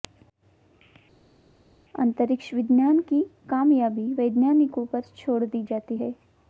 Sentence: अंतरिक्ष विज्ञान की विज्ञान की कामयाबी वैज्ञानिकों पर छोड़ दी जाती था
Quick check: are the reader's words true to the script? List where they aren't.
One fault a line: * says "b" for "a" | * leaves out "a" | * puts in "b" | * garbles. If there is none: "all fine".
* leaves out "विज्ञान की"
* says "है" for "था"